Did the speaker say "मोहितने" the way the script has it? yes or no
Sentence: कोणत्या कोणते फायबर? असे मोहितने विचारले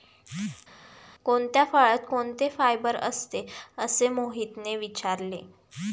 yes